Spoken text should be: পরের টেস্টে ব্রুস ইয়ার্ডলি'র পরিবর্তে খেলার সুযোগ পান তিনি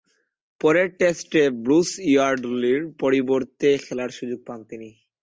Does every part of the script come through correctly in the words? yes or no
yes